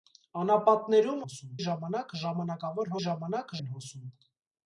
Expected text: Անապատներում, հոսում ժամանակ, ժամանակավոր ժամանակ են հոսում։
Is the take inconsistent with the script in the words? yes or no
no